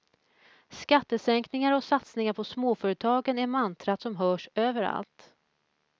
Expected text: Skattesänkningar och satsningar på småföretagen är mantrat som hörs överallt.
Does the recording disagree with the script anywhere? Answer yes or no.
no